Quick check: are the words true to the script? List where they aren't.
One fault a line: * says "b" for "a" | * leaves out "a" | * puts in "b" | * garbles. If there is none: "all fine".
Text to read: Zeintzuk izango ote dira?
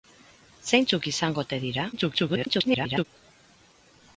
* garbles